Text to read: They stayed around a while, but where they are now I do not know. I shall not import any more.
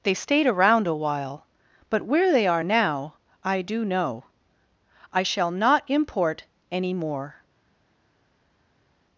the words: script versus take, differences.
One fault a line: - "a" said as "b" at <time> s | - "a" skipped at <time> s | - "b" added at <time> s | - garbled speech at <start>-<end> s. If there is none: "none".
- "not" skipped at 3.8 s